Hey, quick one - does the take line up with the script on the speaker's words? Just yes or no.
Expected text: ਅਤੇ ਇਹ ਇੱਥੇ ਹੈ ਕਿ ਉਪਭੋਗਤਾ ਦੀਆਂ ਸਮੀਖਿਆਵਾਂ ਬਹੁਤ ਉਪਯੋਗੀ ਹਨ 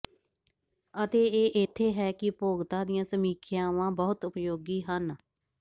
yes